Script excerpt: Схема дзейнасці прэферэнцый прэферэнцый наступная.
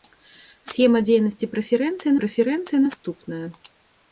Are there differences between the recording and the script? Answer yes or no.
no